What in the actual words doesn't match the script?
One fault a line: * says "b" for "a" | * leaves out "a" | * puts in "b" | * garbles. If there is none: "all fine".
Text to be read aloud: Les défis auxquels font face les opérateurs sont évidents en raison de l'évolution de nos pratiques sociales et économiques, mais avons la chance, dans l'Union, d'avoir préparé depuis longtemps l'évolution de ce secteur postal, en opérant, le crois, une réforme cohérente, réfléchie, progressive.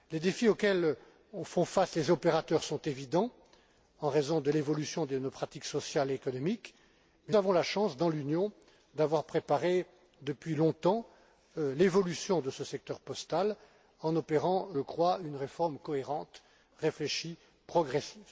all fine